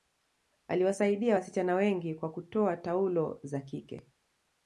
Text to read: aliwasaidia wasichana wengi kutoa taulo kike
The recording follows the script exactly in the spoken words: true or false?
false